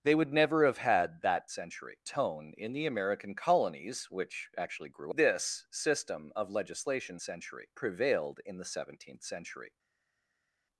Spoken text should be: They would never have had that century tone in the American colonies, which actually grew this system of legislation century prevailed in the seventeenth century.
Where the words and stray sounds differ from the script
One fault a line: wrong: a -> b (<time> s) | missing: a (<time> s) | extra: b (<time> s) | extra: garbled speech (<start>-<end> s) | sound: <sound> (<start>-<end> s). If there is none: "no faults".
no faults